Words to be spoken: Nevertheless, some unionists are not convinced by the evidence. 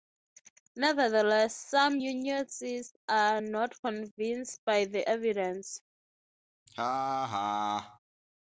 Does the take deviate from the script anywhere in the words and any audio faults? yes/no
yes